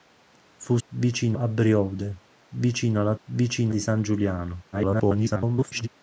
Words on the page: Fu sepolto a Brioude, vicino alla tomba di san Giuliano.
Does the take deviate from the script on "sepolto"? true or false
true